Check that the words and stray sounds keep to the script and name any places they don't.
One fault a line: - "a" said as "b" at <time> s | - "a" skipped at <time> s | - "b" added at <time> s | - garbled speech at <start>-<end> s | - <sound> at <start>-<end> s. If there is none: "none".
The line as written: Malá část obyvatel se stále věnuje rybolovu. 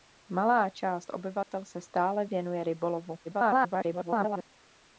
- dropout at 1.4-1.5 s
- garbled speech at 3.2-4.5 s